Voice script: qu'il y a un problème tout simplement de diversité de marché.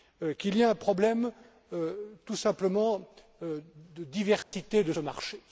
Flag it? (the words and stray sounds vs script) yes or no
yes